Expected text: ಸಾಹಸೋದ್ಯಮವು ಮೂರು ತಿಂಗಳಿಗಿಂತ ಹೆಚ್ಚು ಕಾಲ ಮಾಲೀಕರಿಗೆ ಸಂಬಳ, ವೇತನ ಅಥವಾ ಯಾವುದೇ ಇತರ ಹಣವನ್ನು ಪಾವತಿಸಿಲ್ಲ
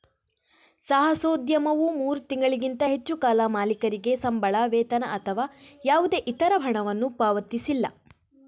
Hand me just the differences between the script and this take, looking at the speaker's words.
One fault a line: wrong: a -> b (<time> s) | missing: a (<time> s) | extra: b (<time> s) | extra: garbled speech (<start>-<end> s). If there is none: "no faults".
no faults